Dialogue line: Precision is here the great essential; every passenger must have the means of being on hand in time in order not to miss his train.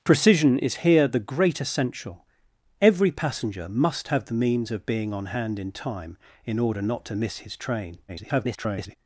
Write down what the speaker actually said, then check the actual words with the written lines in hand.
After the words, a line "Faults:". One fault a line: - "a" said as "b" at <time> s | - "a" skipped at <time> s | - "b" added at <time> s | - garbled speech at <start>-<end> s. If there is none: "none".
Precision is here the great essential; every passenger must have the means of being on hand in time in order not to miss his train. [garbled]
Faults:
- garbled speech at 8.1-9.0 s